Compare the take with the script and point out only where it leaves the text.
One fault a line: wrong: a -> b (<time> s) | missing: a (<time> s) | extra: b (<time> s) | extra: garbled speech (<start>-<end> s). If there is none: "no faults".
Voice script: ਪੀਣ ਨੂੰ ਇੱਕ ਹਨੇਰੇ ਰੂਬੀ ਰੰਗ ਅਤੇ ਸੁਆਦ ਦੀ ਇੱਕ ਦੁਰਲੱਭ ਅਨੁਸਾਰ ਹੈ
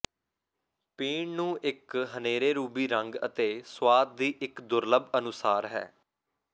no faults